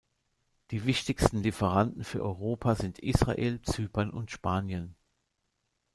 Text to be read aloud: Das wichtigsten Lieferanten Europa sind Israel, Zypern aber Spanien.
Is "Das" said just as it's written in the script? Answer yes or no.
no